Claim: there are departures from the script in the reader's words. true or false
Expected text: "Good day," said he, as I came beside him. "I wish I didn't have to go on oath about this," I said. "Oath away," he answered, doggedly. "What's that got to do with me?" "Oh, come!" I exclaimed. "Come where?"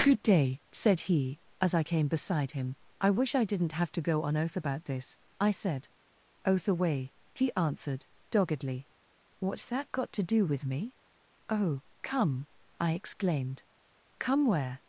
false